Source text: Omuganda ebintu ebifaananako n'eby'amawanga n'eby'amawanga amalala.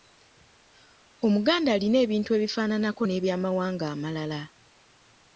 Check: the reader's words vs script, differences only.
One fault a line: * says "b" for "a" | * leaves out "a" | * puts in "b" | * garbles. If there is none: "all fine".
* puts in "alina"
* leaves out "n'eby'amawanga"